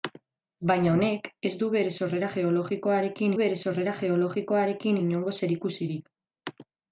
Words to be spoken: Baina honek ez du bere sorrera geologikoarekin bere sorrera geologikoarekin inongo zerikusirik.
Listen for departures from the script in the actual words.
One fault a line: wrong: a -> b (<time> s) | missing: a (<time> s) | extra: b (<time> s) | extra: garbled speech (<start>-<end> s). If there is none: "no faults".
no faults